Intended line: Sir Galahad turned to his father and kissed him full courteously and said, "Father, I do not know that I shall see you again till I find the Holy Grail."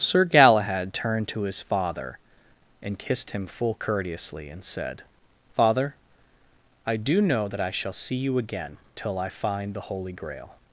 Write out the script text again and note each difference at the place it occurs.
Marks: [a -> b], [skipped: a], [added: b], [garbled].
Sir Galahad turned to his father and kissed him full courteously and said, "Father, I do [skipped: not] know that I shall see you again till I find the Holy Grail."